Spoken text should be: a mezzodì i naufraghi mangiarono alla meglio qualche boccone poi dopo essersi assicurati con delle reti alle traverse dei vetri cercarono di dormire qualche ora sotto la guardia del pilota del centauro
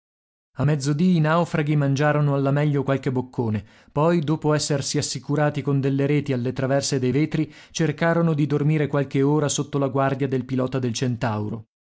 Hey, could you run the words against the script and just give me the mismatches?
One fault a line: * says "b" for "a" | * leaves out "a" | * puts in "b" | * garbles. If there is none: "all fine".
all fine